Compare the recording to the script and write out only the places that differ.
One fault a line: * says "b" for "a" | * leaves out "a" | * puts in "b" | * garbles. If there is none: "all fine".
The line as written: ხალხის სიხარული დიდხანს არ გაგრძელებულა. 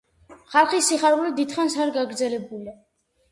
all fine